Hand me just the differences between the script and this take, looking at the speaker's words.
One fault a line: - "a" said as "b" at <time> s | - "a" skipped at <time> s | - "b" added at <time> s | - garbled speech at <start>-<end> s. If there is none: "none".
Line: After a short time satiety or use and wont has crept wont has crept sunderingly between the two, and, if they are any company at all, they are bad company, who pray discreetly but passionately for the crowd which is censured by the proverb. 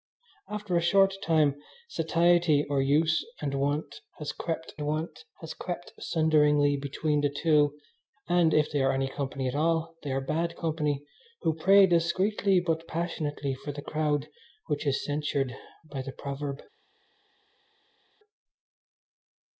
none